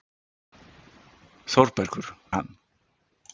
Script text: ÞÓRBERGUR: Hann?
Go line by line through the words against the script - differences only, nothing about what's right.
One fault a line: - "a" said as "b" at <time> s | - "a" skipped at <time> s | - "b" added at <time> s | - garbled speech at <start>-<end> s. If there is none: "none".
none